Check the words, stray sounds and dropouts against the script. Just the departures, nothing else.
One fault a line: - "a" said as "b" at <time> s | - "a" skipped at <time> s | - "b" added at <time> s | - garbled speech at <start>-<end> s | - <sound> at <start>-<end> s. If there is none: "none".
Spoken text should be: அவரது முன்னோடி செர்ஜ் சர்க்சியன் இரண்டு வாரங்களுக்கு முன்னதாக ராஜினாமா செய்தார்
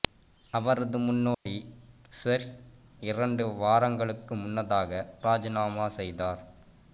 - dropout at 1.3-1.5 s
- "சர்க்சியன்" skipped at 2.5 s